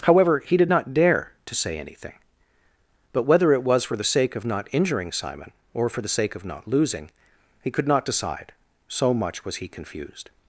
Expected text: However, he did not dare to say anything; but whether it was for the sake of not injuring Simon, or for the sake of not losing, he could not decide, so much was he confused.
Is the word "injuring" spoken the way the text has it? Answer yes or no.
yes